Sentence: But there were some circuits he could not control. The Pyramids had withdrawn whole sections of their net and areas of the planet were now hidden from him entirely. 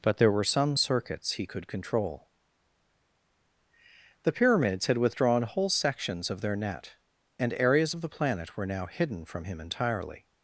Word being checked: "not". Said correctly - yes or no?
no